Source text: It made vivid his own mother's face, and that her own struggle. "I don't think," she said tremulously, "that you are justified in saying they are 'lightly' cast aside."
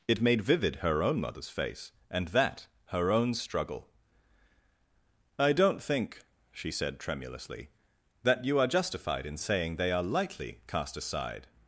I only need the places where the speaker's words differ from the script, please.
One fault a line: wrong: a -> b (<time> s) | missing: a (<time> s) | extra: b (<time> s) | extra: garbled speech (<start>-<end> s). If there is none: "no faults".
wrong: his -> her (0.8 s)